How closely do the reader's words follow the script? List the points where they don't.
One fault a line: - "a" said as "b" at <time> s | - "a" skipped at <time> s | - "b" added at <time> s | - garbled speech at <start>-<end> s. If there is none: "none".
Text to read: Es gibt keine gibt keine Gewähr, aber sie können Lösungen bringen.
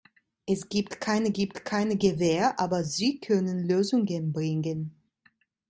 none